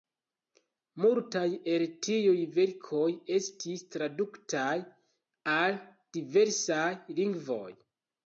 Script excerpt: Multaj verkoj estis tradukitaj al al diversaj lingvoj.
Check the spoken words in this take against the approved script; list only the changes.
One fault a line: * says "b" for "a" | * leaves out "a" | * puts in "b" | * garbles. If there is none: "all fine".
* puts in "el tiuj"
* leaves out "al"